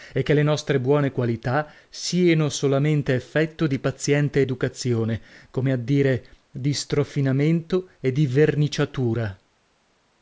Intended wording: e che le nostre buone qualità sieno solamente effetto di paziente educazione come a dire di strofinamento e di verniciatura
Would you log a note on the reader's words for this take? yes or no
no